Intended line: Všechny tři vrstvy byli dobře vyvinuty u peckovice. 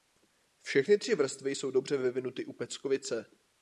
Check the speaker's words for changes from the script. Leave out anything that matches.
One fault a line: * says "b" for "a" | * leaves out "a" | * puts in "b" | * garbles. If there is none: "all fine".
* says "jsou" for "byli"